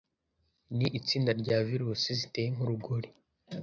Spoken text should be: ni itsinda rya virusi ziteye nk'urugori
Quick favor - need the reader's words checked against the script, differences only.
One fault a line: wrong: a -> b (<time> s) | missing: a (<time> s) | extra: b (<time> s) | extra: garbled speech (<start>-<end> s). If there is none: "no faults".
no faults